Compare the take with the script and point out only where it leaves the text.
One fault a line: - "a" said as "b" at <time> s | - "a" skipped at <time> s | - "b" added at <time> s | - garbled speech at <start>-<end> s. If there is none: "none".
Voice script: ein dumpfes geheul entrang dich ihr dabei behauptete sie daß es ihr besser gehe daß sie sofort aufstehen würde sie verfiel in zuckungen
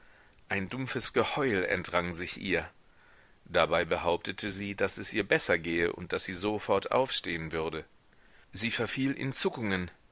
- "dich" said as "sich" at 2.1 s
- "und" added at 5.9 s